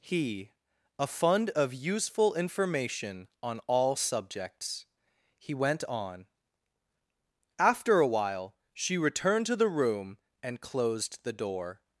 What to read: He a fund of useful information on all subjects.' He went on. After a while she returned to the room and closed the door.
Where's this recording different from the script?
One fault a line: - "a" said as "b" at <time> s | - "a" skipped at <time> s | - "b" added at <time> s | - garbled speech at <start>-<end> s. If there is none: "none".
none